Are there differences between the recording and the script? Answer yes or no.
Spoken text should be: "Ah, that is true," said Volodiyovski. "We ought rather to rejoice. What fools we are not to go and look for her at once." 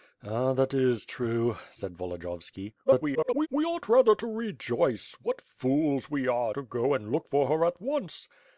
yes